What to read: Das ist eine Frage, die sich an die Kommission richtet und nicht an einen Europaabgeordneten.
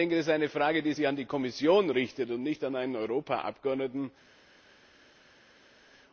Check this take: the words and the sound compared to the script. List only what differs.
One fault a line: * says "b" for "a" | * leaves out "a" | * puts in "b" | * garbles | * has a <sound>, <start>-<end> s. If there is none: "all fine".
all fine